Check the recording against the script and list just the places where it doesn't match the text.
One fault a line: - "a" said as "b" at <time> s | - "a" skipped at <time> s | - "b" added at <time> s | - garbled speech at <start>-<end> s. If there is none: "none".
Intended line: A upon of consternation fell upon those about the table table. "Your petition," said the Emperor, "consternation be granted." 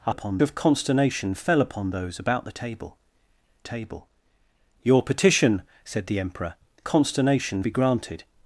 none